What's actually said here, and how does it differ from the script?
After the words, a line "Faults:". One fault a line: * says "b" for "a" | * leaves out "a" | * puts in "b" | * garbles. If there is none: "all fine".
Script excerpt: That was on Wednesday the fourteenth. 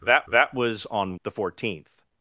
That that was on The fourteenth.
Faults:
* puts in "that"
* leaves out "Wednesday"